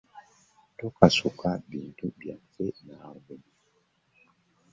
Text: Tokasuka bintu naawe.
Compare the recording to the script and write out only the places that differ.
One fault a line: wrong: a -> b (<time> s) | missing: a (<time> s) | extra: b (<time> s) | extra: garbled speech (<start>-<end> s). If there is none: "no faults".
extra: byaffe (2.2 s)